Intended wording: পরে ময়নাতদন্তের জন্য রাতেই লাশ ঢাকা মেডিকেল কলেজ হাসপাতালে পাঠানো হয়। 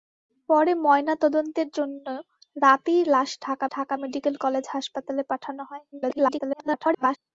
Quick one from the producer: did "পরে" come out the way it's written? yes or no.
yes